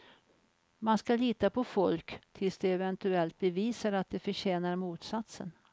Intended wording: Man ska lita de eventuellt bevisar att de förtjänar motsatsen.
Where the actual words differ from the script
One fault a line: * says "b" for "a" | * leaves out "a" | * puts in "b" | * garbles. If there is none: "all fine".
* puts in "på folk tills"